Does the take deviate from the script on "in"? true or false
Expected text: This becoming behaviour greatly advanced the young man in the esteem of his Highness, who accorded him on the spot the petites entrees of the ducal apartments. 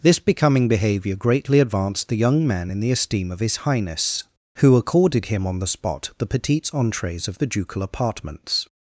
false